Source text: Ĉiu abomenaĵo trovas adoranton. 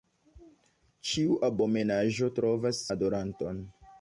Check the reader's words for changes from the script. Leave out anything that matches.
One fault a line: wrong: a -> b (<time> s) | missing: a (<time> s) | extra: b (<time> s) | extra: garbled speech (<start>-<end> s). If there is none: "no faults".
no faults